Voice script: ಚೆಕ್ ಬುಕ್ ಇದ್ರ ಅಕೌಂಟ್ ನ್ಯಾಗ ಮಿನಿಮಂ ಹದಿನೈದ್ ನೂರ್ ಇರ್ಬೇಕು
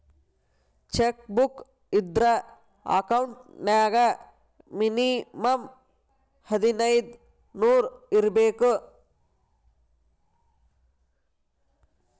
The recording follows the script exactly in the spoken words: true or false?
true